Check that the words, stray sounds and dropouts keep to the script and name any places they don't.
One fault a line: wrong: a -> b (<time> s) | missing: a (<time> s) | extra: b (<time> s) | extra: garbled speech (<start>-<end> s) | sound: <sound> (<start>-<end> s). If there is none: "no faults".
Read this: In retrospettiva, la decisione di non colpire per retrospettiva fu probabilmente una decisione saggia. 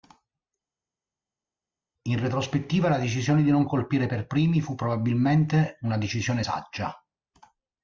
wrong: retrospettiva -> primi (4.3 s)